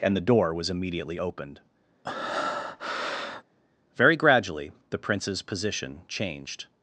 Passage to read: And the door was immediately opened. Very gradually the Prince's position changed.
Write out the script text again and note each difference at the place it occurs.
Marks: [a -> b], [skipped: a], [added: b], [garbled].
And the door was immediately opened. Very gradually the Prince's position changed.